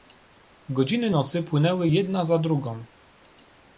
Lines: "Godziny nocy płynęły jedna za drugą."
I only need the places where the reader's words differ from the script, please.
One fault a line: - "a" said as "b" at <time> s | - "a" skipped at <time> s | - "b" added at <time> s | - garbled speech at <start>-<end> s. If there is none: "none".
none